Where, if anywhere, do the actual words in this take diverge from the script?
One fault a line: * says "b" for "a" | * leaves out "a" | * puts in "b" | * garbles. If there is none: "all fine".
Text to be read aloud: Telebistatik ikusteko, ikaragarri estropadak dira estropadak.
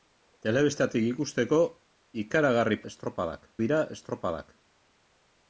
all fine